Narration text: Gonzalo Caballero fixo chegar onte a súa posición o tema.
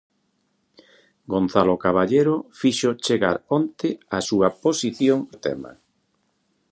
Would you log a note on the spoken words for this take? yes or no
no